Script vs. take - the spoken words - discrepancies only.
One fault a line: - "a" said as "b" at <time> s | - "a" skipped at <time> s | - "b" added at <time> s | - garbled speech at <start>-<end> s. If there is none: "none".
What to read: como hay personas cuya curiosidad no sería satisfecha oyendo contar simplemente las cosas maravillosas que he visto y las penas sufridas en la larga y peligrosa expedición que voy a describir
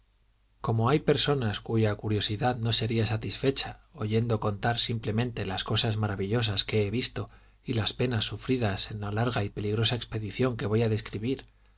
none